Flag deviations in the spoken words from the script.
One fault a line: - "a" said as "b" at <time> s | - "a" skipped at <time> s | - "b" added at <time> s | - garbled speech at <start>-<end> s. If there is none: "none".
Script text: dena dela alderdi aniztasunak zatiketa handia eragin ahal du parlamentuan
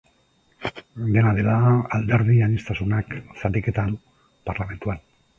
- "handia eragin ahal" skipped at 3.9 s